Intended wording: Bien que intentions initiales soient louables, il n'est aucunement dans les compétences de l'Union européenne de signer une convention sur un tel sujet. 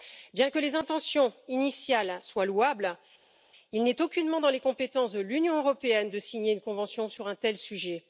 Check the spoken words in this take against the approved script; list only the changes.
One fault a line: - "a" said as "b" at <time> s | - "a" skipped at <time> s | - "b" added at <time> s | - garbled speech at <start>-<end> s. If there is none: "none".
- "les" added at 0.6 s